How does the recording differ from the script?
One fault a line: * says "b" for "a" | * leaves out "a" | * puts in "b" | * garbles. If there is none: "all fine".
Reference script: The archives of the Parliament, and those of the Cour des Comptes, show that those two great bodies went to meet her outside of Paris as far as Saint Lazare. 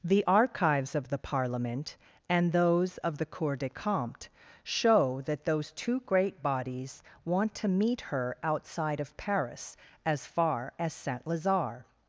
* says "want" for "went"